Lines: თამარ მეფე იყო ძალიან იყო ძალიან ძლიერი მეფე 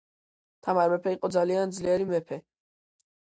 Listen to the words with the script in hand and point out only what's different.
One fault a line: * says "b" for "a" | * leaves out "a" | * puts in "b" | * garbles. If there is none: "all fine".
* leaves out "იყო ძალიან"